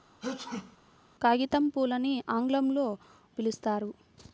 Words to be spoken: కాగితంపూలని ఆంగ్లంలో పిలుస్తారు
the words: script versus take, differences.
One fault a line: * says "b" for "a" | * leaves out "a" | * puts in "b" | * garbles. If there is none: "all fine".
all fine